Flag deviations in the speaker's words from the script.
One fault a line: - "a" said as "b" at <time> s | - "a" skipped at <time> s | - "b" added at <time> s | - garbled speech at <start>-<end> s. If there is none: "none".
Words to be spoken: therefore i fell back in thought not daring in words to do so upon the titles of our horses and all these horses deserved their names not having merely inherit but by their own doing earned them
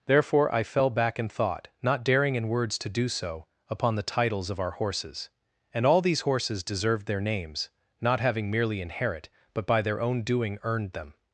none